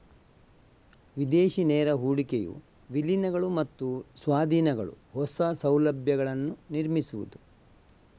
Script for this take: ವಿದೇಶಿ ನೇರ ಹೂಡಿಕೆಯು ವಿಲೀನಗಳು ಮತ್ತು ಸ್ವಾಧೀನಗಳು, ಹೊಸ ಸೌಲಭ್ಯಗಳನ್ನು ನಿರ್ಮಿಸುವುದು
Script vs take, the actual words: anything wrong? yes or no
no